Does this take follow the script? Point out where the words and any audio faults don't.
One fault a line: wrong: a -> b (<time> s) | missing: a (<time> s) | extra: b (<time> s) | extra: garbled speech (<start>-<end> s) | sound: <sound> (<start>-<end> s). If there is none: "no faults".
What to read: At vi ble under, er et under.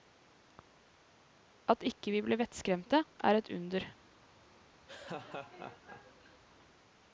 extra: ikke (1.9 s)
wrong: under -> vettskremte (2.4 s)
sound: laugh (4.9-6.4 s)